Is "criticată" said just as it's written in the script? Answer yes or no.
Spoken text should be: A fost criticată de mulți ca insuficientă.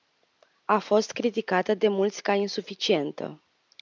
yes